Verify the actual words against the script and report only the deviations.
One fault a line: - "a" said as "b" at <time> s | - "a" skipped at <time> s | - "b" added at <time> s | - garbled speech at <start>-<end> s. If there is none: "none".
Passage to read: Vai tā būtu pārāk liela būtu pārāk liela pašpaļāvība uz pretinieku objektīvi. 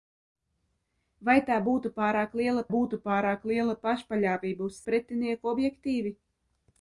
none